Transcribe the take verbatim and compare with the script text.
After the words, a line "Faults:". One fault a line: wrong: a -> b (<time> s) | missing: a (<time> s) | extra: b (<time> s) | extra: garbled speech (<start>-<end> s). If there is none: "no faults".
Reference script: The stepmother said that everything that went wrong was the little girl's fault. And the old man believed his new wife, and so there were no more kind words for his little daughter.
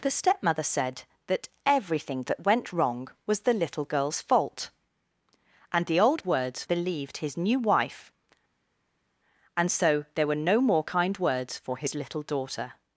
The stepmother said that everything that went wrong was the little girl's fault. And the old words believed his new wife, and so there were no more kind words for his little daughter.
Faults:
wrong: man -> words (6.2 s)